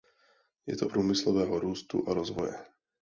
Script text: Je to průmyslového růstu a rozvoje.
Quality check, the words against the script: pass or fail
pass